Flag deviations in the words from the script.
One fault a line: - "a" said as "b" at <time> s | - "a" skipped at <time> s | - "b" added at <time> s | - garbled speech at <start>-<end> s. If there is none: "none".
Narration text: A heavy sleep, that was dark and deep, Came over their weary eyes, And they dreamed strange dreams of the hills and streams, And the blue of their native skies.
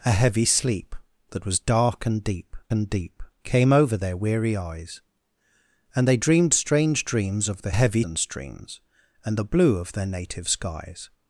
- "and deep" added at 2.7 s
- "hills" said as "heavy" at 7.7 s